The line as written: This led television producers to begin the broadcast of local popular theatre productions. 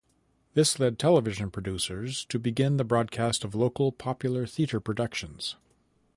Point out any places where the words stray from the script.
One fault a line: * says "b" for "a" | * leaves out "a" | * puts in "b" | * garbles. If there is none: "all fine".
all fine